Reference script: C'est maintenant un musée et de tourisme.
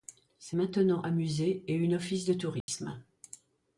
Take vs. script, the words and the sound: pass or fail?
fail